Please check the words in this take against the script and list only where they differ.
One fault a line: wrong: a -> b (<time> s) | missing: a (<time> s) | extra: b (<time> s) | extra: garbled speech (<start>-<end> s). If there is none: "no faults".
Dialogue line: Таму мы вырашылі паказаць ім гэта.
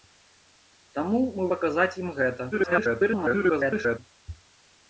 missing: вырашылі (1.4 s)
extra: garbled speech (2.5-4.0 s)